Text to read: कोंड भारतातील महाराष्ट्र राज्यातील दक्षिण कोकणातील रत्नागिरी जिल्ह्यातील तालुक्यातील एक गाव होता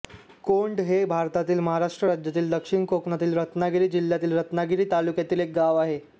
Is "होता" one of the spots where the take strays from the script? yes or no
yes